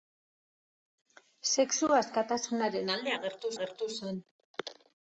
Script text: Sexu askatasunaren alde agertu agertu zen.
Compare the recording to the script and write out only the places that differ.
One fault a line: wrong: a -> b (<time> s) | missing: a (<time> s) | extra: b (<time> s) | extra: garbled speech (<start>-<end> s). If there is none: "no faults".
no faults